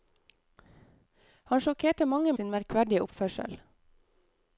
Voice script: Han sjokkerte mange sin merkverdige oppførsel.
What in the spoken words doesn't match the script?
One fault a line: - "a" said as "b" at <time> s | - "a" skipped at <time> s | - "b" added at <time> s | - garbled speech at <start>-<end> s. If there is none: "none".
none